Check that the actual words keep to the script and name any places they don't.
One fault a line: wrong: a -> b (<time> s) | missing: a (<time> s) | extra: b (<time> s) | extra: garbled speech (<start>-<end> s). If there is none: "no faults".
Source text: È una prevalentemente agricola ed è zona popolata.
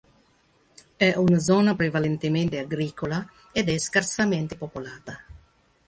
extra: zona (1.4 s)
wrong: zona -> scarsamente (3.8 s)